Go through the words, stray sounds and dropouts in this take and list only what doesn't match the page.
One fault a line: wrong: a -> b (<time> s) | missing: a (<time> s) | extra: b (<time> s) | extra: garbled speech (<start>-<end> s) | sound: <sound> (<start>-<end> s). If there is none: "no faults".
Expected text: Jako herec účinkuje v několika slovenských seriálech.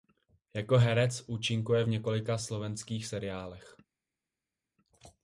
no faults